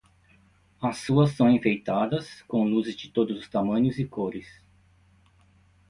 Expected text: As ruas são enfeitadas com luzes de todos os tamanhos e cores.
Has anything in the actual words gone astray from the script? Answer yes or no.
no